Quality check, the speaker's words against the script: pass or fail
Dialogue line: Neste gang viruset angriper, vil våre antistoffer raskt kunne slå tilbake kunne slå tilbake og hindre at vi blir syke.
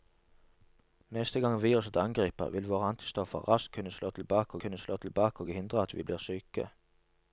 pass